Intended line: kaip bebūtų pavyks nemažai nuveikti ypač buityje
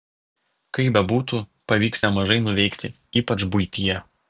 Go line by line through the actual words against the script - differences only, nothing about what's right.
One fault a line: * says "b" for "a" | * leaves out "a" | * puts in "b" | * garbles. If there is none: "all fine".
all fine